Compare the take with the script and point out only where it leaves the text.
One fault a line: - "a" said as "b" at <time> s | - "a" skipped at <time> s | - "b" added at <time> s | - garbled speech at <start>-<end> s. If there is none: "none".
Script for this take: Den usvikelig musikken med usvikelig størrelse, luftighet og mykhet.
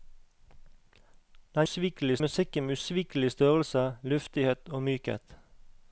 none